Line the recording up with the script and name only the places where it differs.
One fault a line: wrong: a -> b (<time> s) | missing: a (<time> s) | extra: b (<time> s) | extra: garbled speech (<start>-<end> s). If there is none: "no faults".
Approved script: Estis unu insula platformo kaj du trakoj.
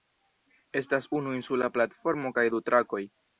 wrong: Estis -> Estas (0.8 s)